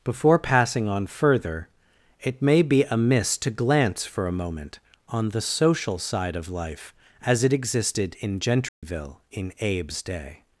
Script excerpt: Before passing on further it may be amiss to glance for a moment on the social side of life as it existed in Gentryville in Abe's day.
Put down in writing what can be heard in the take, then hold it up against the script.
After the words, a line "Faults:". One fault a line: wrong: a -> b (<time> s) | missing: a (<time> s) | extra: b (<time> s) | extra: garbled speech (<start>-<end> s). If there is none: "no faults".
Before passing on further it may be amiss to glance for a moment on the social side of life as it existed in Gentryville in Abe's day.
Faults:
no faults